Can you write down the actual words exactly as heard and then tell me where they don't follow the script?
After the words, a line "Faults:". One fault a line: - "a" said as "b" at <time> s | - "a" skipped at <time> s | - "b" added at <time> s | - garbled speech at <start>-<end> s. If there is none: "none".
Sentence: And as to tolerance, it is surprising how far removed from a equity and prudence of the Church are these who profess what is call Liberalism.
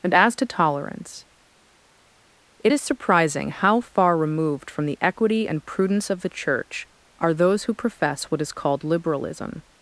And as to tolerance, it is surprising how far removed from the equity and prudence of the Church are those who profess what is called Liberalism.
Faults:
- "a" said as "the" at 4.8 s
- "these" said as "those" at 7.3 s
- "call" said as "called" at 8.5 s